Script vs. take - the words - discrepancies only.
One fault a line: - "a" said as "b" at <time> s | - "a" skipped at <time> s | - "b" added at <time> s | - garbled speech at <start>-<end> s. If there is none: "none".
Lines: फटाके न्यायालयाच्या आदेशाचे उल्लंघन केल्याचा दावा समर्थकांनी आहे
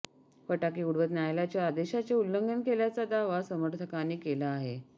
- "उडवत" added at 0.8 s
- "केला" added at 4.2 s